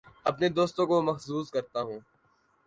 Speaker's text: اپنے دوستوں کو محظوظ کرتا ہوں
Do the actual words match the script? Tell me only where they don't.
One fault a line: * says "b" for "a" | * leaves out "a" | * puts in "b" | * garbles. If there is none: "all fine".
all fine